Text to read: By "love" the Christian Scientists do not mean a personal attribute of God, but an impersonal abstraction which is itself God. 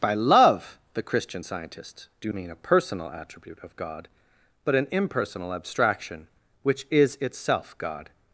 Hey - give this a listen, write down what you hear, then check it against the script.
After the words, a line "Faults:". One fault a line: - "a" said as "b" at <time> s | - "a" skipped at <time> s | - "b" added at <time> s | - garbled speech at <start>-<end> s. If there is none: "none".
By "love" the Christian Scientists do mean a personal attribute of God, but an impersonal abstraction which is itself God.
Faults:
- "not" skipped at 2.3 s